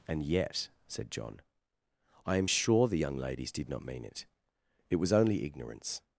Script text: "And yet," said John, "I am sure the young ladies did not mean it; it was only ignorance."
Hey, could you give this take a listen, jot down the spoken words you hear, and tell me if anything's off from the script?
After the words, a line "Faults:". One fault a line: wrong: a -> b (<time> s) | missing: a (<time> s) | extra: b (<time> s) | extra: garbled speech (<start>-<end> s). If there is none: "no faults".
"And yet," said John, "I am sure the young ladies did not mean it; it was only ignorance."
Faults:
no faults